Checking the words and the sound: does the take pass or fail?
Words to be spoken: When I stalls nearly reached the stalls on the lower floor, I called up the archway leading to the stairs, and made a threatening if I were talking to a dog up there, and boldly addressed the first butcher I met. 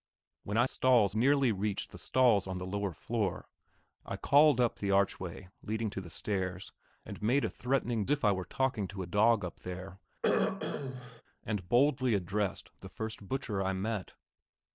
fail